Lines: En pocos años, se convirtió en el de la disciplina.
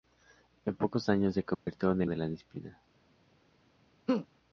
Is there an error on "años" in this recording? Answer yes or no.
no